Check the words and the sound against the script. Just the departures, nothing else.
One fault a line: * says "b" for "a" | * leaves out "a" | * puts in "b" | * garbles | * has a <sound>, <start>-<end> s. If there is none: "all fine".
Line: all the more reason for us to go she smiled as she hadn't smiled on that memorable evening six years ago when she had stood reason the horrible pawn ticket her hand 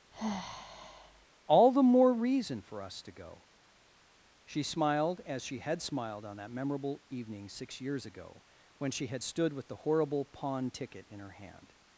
* has a sigh, 0.1-1.3 s
* says "had" for "hadn't"
* says "with" for "reason"
* puts in "in"